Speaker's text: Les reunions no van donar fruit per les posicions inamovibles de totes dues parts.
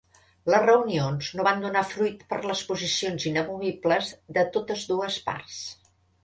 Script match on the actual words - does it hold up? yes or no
yes